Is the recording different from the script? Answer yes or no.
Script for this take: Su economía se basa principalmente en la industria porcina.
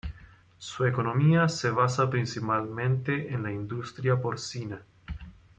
no